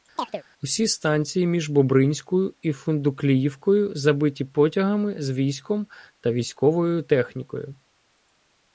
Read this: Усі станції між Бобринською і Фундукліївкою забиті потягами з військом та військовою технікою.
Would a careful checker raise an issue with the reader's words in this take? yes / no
no